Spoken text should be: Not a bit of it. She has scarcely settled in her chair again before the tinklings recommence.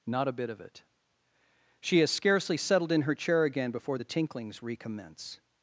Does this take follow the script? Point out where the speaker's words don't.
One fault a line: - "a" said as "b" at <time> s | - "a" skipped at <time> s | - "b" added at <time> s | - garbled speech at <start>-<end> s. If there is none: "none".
none